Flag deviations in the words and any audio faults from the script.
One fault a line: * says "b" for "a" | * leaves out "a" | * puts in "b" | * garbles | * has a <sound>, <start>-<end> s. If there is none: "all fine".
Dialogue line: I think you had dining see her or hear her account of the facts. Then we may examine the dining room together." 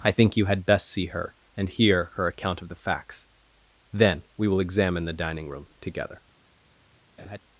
* says "best" for "dining"
* says "and" for "or"
* says "will" for "may"
* has a laugh, 7.2-7.4 s